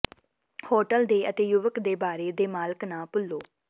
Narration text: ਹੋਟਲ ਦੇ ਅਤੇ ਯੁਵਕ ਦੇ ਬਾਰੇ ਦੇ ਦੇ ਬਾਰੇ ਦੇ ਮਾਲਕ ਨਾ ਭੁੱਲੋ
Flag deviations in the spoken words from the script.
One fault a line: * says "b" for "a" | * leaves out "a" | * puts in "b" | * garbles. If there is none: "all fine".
* leaves out "ਦੇ ਬਾਰੇ ਦੇ"